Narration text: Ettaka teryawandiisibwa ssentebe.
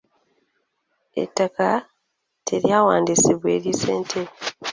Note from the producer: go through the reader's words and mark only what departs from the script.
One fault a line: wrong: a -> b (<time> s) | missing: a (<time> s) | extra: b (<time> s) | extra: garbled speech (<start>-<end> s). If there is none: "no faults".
extra: eri (3.6 s)